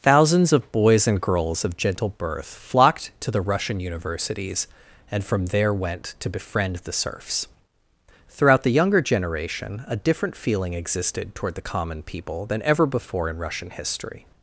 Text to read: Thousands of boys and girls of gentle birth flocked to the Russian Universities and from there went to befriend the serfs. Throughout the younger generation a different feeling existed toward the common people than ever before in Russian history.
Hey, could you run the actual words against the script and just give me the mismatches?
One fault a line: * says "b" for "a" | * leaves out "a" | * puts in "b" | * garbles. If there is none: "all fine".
all fine